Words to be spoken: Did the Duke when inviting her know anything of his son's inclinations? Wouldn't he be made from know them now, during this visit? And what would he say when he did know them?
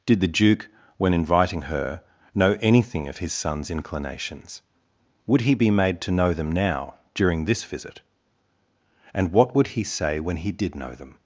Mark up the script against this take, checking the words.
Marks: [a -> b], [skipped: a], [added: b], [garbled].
Did the Duke when inviting her know anything of his son's inclinations? [Wouldn't -> Would] he be made [from -> to] know them now, during this visit? And what would he say when he did know them?